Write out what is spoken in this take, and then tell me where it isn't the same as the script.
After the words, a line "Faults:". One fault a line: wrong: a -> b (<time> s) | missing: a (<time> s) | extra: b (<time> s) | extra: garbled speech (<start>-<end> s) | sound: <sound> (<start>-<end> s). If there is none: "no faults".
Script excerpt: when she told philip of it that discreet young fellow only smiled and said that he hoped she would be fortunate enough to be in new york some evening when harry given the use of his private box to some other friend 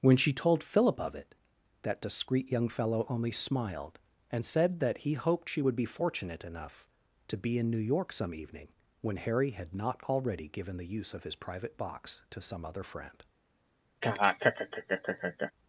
when she told philip of it that discreet young fellow only smiled and said that he hoped she would be fortunate enough to be in new york some evening when harry had not already given the use of his private box to some other friend
Faults:
extra: had not already (9.5 s)
sound: laugh (14.0-15.5 s)